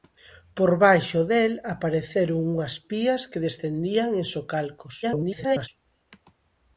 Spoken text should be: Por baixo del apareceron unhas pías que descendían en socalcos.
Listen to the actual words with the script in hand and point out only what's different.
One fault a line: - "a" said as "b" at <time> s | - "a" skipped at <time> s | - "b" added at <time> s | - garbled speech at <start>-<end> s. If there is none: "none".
- garbled speech at 5.0-5.7 s